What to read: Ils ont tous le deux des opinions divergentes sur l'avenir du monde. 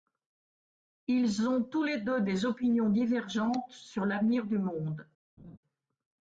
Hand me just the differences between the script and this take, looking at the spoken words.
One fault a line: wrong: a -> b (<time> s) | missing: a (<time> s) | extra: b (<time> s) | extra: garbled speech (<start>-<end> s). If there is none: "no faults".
wrong: le -> les (1.8 s)